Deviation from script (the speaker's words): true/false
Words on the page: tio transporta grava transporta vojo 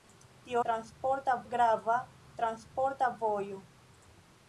false